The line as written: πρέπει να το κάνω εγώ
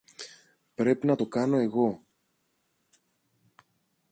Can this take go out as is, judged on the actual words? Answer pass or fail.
pass